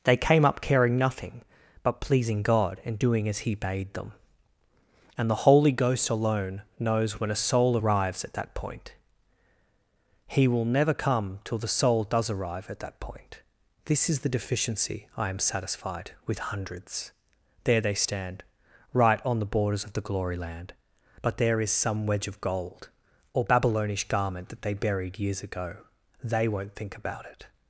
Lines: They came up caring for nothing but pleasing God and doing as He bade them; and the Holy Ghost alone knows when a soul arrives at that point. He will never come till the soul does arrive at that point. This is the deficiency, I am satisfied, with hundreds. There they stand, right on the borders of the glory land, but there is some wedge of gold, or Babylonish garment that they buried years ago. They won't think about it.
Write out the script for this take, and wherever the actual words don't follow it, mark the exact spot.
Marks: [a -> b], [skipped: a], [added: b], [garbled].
They came up caring [skipped: for] nothing but pleasing God and doing as He bade them; and the Holy Ghost alone knows when a soul arrives at that point. He will never come till the soul does arrive at that point. This is the deficiency, I am satisfied, with hundreds. There they stand, right on the borders of the glory land, but there is some wedge of gold, or Babylonish garment that they buried years ago. They won't think about it.